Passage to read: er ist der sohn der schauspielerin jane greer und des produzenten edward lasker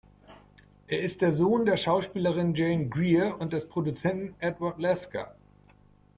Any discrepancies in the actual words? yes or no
no